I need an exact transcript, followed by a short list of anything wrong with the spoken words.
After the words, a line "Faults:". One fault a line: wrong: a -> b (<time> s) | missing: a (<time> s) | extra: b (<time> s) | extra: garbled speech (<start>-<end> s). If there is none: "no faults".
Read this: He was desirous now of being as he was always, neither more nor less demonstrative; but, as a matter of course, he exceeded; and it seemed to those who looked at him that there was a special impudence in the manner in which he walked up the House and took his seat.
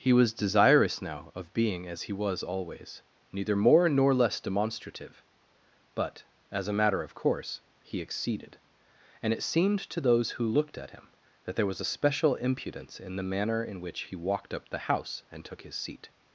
He was desirous now of being as he was always, neither more nor less demonstrative; but, as a matter of course, he exceeded; and it seemed to those who looked at him that there was a special impudence in the manner in which he walked up the House and took his seat.
Faults:
no faults